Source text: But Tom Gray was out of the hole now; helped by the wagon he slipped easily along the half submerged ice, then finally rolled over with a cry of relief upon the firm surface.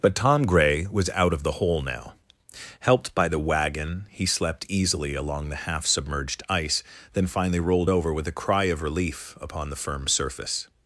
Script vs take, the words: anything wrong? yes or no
yes